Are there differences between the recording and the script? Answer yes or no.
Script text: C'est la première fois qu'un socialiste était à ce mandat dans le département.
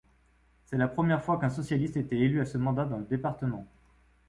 yes